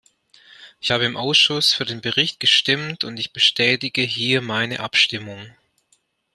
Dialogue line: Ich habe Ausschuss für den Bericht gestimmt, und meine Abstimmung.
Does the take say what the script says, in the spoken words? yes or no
no